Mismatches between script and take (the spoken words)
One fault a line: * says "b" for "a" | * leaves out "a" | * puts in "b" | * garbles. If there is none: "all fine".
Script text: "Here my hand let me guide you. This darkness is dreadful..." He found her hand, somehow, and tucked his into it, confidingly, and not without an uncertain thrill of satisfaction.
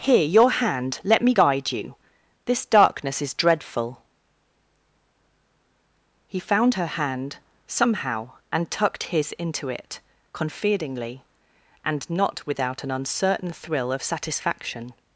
* says "your" for "my"